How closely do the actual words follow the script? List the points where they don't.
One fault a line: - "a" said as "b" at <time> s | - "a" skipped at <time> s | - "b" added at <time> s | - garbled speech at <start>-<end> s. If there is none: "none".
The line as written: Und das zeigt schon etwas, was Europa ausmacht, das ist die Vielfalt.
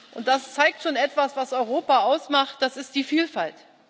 none